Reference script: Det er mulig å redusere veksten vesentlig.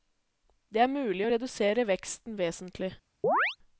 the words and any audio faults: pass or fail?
fail